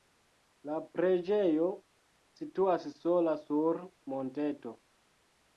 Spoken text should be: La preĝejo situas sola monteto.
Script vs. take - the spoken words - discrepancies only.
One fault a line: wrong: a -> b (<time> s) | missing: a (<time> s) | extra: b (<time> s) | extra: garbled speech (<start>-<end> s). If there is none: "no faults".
extra: sur (3.4 s)